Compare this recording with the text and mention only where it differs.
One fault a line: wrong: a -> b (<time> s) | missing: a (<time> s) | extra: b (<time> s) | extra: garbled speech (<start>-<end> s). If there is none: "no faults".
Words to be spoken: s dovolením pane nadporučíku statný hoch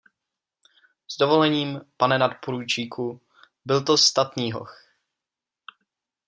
extra: byl to (3.7 s)